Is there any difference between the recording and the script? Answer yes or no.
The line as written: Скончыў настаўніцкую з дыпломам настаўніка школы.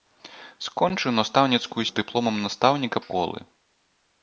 no